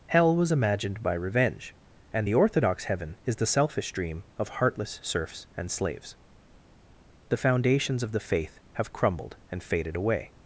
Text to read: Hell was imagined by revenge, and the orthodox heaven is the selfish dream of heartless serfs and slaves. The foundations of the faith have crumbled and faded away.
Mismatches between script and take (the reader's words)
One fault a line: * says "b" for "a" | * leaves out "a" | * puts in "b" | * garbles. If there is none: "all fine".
all fine